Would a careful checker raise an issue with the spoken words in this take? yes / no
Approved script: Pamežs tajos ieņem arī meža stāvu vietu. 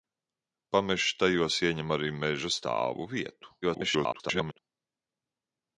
yes